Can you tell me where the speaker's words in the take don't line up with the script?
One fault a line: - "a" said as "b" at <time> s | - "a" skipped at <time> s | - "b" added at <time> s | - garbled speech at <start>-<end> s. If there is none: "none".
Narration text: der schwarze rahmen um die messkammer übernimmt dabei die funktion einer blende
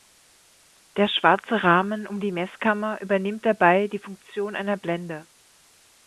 none